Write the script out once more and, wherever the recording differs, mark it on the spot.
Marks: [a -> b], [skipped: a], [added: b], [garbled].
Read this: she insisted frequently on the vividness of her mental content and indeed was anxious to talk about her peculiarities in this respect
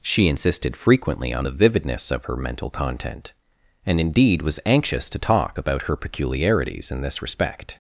she insisted frequently on the vividness of her mental content and indeed was anxious to talk about her peculiarities in this respect